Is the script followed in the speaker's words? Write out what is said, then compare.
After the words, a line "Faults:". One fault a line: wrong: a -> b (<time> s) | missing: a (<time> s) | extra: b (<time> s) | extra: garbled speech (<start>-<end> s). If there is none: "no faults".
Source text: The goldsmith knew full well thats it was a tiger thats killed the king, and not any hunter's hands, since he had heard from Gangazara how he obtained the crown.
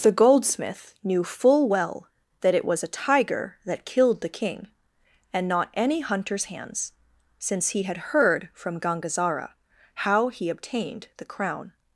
The goldsmith knew full well that it was a tiger that killed the king, and not any hunter's hands, since he had heard from Gangazara how he obtained the crown.
Faults:
wrong: thats -> that (2.4 s)
wrong: thats -> that (3.6 s)